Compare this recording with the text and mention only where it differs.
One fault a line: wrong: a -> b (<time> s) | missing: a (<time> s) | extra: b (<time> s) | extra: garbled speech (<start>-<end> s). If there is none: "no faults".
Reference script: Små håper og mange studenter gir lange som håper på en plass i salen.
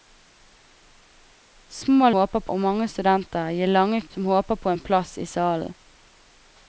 no faults